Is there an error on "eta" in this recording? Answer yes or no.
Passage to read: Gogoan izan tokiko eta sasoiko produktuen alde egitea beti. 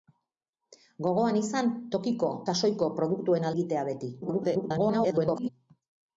yes